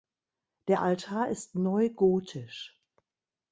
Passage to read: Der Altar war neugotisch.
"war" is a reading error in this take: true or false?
true